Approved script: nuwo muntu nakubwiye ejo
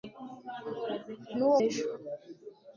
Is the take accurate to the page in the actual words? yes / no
no